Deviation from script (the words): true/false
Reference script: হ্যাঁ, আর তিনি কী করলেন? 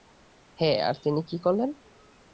false